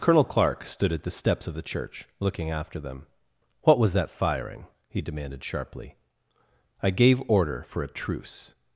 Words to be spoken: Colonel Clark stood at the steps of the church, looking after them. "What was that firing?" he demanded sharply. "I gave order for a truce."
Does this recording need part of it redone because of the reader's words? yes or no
no